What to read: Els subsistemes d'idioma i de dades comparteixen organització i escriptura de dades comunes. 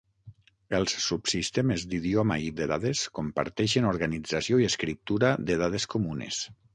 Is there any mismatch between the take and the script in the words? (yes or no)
no